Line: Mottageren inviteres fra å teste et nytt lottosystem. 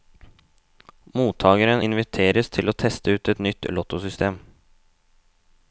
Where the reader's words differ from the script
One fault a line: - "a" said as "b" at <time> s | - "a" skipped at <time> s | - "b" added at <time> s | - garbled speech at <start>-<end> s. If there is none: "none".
- "fra" said as "til" at 2.6 s
- "ut" added at 3.2 s